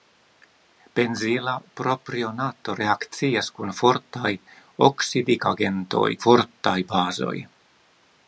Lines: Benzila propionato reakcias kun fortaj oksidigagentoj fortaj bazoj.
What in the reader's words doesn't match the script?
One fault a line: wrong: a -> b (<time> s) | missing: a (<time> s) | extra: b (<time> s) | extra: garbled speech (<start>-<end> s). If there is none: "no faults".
no faults